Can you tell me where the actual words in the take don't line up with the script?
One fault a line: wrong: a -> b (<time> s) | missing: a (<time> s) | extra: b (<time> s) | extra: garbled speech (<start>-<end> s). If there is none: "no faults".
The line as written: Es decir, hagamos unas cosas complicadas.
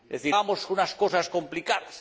no faults